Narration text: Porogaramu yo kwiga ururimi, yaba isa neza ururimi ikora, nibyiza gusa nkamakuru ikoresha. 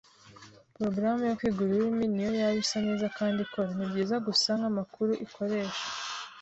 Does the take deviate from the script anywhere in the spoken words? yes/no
yes